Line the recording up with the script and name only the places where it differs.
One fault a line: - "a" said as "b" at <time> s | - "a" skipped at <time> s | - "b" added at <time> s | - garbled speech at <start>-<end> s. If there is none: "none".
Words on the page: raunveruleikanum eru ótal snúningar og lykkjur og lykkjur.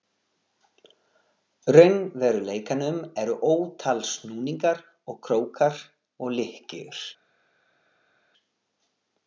- "lykkjur" said as "krókar" at 5.3 s